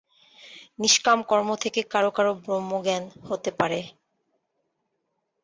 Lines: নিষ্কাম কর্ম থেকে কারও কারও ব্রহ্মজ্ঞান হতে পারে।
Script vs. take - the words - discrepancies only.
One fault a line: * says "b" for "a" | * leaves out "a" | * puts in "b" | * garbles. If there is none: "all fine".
all fine